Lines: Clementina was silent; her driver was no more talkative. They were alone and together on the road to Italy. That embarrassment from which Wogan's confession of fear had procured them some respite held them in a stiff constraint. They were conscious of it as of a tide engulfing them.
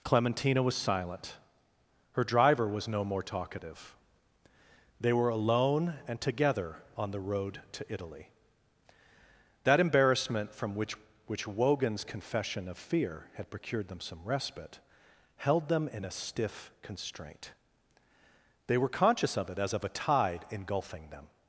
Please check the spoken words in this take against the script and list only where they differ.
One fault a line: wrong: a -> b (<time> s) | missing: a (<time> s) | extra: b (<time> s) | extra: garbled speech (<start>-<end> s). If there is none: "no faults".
extra: which (11.3 s)